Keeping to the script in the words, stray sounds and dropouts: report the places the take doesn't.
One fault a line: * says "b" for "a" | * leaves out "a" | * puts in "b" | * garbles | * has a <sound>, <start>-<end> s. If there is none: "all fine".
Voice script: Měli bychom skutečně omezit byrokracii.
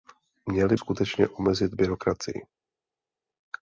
* leaves out "bychom"